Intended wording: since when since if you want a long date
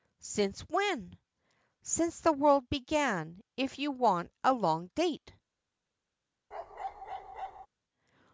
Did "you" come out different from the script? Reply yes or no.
no